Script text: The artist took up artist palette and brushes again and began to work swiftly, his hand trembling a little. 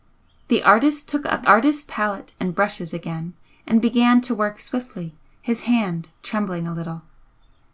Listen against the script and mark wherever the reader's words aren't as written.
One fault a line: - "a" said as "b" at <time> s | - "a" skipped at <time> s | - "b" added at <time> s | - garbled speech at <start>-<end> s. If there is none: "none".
none